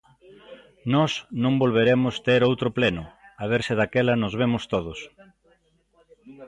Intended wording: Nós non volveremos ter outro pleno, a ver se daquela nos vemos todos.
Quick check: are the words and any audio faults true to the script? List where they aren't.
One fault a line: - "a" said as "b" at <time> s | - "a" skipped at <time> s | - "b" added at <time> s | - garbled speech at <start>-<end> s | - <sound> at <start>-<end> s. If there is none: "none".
none